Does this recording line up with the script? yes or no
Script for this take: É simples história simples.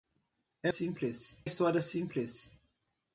yes